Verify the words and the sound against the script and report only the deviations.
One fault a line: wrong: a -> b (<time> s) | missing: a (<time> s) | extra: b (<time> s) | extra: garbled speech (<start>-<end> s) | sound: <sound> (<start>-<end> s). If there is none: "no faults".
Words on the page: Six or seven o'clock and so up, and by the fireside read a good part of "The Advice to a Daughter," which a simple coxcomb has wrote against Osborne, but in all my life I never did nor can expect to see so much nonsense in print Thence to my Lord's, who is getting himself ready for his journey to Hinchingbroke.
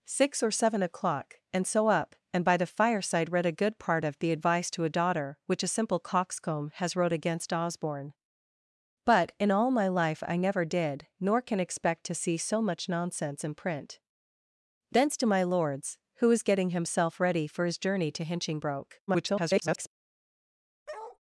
extra: garbled speech (19.1-19.9 s)
sound: bark (20.9-21.2 s)